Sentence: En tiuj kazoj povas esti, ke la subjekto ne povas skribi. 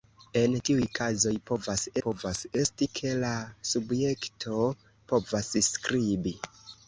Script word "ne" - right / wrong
wrong